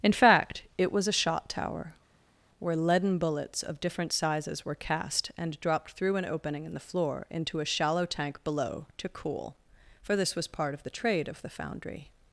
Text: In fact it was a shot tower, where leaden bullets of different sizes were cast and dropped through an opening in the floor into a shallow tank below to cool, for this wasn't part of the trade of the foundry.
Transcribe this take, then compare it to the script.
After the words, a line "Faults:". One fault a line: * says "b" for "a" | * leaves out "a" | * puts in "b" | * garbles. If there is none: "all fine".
In fact it was a shot tower, where leaden bullets of different sizes were cast and dropped through an opening in the floor into a shallow tank below to cool, for this was part of the trade of the foundry.
Faults:
* says "was" for "wasn't"